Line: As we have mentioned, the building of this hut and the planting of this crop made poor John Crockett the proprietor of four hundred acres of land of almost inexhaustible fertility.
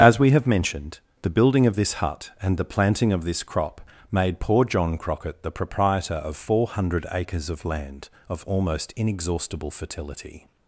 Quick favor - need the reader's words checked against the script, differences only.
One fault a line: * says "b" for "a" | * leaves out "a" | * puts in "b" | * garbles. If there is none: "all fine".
all fine